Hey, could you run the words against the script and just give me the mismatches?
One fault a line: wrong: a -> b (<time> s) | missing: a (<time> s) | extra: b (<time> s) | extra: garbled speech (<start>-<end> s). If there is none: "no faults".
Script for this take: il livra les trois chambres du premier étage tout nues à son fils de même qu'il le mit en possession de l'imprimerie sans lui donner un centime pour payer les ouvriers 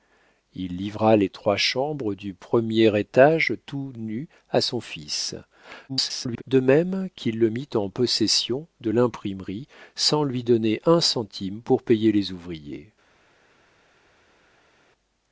extra: garbled speech (5.9-6.4 s)